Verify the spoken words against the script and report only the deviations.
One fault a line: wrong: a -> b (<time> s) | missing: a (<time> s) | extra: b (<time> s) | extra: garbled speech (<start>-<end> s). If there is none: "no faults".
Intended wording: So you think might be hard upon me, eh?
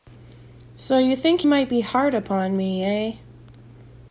no faults